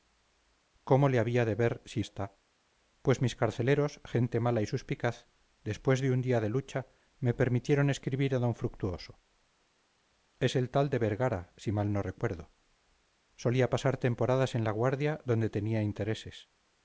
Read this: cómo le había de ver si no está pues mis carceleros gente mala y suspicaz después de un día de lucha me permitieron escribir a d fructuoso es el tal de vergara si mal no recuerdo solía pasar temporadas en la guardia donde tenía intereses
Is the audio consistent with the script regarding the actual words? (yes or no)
no